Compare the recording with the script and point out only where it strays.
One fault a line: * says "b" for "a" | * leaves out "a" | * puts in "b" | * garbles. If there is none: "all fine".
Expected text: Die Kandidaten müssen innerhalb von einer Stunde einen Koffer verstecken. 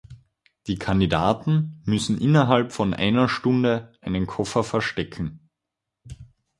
all fine